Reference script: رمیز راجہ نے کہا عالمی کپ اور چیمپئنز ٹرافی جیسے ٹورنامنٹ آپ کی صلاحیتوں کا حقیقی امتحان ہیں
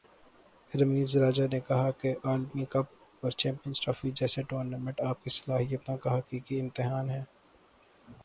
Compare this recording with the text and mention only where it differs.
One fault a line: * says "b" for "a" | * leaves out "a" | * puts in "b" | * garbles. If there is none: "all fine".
* puts in "کہ"